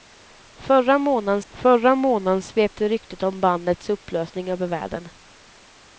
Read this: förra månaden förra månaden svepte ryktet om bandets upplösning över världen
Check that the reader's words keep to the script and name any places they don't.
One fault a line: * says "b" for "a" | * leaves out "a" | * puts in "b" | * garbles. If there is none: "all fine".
all fine